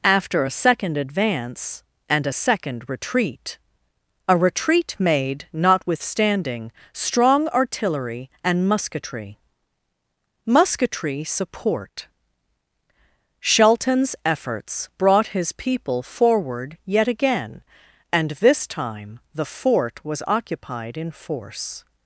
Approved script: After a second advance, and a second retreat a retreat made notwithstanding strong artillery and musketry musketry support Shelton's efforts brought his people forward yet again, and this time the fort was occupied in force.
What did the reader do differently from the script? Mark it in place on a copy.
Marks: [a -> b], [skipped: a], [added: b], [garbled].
After a second advance, and a second retreat a retreat made notwithstanding strong artillery and musketry musketry support Shelton's efforts brought his people forward yet again, and this time the fort was occupied in force.